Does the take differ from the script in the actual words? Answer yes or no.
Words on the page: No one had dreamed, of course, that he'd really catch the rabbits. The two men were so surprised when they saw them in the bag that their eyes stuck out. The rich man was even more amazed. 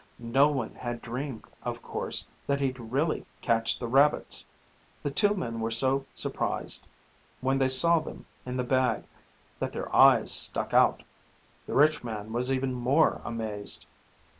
no